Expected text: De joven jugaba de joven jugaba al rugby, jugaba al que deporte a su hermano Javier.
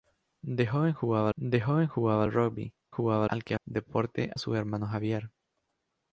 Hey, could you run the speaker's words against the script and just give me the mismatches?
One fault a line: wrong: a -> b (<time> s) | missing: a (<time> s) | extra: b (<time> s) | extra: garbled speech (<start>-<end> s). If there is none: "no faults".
no faults